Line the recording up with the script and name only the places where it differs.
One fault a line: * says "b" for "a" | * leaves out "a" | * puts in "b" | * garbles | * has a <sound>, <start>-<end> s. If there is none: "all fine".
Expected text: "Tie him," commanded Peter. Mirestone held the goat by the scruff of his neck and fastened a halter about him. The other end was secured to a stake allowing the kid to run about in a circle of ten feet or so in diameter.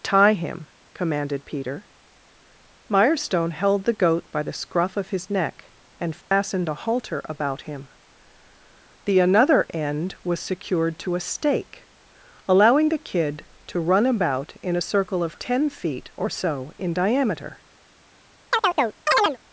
* has a dropout, 6.2-6.3 s
* says "another" for "other"
* has a chirp, 18.5-19.4 s